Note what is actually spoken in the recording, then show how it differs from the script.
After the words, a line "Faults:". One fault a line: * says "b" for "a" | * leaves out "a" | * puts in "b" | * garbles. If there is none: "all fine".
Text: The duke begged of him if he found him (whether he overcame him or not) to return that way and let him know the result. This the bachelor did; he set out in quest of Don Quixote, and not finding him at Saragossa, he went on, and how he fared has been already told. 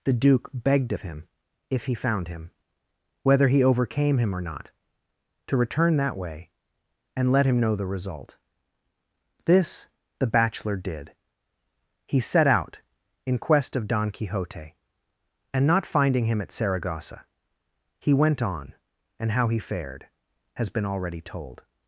The duke begged of him if he found him (whether he overcame him or not) to return that way and let him know the result. This the bachelor did; he set out in quest of Don Quixote, and not finding him at Saragossa, he went on, and how he fared has been already told.
Faults:
all fine